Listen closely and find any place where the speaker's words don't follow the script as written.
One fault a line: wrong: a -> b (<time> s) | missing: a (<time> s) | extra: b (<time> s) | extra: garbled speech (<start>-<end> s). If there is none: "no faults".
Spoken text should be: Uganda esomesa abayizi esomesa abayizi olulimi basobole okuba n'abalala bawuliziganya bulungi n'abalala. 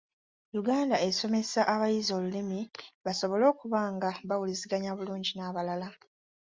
missing: esomesa abayizi (2.1 s)
wrong: n'abalala -> nga (3.9 s)